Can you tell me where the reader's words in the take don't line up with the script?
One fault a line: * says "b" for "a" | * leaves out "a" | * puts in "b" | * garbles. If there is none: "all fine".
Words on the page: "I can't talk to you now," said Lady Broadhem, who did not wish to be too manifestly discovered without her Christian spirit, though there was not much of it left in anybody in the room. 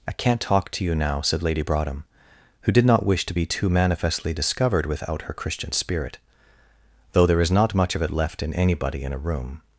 * says "is" for "was"
* says "a" for "the"